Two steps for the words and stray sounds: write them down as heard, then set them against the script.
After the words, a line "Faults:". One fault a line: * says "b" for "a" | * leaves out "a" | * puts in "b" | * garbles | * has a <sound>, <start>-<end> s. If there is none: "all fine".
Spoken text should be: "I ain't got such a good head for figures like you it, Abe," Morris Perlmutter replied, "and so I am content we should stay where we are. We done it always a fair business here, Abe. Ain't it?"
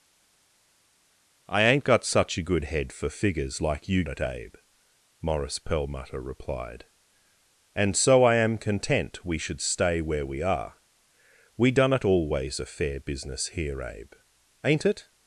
"I ain't got such a good head for figures like you it, Abe," Morris Perlmutter replied, "and so I am content we should stay where we are. We done it always a fair business here, Abe. Ain't it?"
Faults:
all fine